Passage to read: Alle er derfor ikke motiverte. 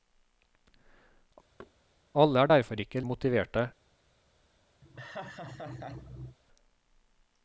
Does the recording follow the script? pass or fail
pass